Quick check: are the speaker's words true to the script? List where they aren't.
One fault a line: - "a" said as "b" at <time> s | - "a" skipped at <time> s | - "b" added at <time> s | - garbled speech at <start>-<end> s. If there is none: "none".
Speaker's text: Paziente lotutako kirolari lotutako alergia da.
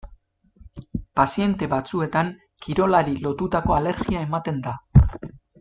- "lotutako" said as "batzuetan" at 1.7 s
- "ematen" added at 4.3 s